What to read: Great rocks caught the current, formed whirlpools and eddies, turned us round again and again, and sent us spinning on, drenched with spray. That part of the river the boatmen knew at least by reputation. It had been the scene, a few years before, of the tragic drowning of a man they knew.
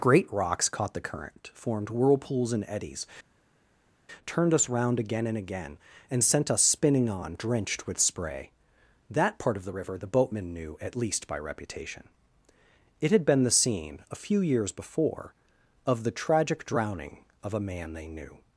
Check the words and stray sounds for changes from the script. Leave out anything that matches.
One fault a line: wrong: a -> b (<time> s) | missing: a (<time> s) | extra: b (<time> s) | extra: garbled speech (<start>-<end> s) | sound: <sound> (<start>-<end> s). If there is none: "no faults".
no faults